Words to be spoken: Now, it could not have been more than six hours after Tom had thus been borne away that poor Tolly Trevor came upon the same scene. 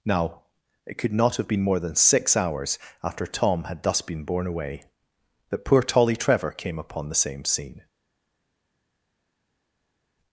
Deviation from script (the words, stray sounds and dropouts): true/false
false